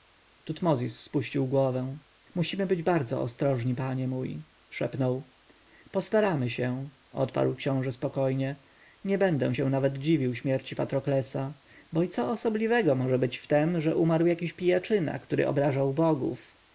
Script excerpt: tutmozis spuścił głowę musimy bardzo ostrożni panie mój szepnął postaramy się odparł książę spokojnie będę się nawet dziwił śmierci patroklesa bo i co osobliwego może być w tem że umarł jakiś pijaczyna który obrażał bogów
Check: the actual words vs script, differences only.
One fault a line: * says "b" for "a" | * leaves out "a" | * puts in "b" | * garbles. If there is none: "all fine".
* puts in "być"
* puts in "nie"